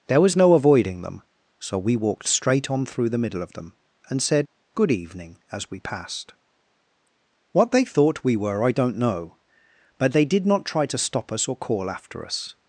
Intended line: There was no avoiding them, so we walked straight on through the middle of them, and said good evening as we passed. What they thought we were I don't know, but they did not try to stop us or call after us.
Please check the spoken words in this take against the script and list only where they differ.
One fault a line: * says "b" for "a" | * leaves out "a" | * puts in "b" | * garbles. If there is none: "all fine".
all fine